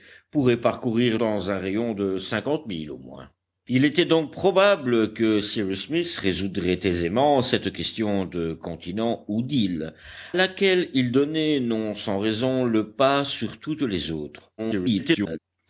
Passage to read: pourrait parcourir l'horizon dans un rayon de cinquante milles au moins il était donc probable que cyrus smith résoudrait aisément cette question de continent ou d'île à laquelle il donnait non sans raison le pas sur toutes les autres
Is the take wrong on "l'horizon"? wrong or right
wrong